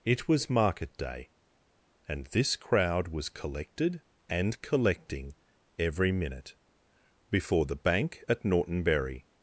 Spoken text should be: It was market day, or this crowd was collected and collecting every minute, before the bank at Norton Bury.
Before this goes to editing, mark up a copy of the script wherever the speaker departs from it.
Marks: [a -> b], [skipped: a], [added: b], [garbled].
It was market day, [or -> and] this crowd was collected and collecting every minute, before the bank at Norton Bury.